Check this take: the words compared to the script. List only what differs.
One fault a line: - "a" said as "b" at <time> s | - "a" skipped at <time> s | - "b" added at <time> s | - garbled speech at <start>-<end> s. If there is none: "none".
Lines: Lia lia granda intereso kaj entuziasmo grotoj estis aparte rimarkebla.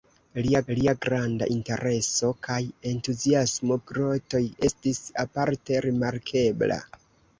none